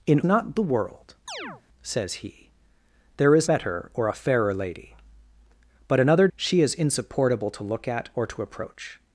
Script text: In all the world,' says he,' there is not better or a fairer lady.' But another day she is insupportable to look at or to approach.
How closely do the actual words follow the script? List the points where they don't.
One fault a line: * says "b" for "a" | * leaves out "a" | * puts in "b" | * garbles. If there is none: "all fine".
* says "not" for "all"
* leaves out "not"
* leaves out "day"